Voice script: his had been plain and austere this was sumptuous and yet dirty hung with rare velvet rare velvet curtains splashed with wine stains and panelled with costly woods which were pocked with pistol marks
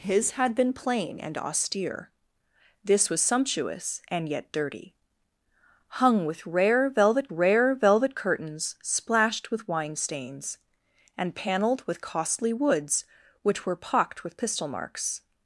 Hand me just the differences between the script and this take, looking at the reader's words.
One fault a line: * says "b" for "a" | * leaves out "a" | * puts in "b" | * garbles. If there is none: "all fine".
all fine